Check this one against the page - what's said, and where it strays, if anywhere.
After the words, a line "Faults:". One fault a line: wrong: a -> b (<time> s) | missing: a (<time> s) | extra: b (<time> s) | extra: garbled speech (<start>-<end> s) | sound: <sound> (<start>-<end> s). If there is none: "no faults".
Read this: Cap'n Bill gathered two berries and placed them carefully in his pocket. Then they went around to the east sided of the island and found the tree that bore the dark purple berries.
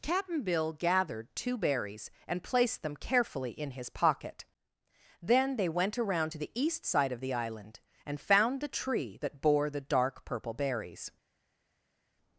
Cap'n Bill gathered two berries and placed them carefully in his pocket. Then they went around to the east side of the island and found the tree that bore the dark purple berries.
Faults:
wrong: sided -> side (6.9 s)